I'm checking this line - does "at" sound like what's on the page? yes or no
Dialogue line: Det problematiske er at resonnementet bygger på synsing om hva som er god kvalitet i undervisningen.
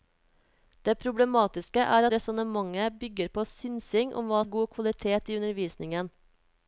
no